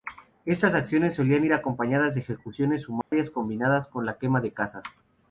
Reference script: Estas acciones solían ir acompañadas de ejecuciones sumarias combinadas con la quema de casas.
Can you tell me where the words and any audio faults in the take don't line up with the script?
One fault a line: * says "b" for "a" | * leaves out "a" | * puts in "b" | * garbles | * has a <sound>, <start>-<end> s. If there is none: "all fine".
* has a dropout, 3.0-3.1 s